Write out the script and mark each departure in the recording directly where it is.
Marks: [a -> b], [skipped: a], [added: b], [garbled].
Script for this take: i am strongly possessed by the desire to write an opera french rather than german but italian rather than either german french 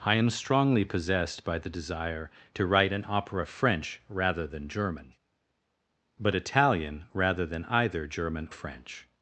i am strongly possessed by the desire to write an opera french rather than german but italian rather than either german french